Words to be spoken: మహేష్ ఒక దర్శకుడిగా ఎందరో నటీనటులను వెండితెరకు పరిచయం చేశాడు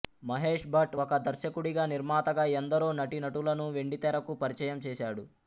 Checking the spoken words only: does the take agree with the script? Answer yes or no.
no